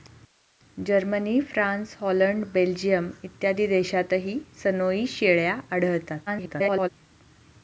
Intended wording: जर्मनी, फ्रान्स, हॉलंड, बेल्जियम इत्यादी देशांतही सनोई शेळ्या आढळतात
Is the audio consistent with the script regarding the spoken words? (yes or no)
no